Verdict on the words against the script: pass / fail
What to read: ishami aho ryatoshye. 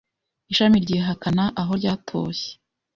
fail